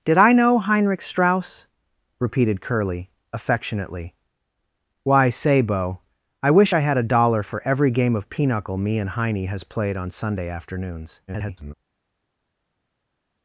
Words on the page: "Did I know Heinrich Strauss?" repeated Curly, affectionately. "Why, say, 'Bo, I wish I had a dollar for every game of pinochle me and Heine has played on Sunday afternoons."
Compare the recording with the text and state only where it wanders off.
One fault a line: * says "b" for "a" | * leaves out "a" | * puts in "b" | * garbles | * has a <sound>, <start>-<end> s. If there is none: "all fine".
* garbles